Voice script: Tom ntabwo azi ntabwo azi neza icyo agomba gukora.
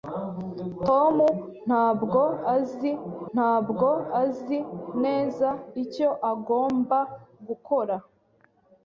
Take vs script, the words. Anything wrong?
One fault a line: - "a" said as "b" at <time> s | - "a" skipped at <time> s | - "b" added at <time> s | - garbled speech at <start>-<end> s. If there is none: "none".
none